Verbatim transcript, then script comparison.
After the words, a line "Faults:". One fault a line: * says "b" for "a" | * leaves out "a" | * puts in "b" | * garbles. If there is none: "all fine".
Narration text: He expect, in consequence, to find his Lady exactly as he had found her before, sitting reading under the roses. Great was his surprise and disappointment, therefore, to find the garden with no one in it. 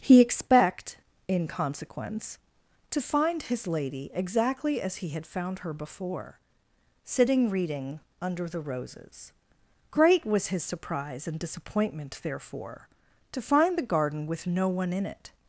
He expect, in consequence, to find his Lady exactly as he had found her before, sitting reading under the roses. Great was his surprise and disappointment, therefore, to find the garden with no one in it.
Faults:
all fine